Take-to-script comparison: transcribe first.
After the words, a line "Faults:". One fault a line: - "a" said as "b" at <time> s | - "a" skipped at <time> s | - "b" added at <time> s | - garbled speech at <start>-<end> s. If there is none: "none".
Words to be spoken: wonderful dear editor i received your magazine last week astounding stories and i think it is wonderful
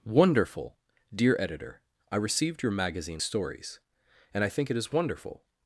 wonderful dear editor i received your magazine stories and i think it is wonderful
Faults:
- "last week astounding" skipped at 3.2 s